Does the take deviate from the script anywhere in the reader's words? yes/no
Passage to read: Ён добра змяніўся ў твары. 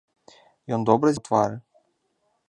yes